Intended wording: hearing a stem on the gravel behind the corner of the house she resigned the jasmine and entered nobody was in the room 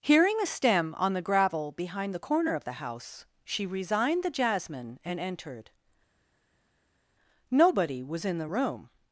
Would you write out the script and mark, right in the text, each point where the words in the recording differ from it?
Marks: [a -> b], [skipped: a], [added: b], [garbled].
hearing a stem on the gravel behind the corner of the house she resigned the jasmine and entered nobody was in the room